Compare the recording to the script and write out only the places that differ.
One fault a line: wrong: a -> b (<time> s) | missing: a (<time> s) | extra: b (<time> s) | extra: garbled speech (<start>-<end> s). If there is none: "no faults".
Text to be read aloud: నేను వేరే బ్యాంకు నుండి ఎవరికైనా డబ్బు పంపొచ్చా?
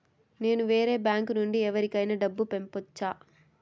no faults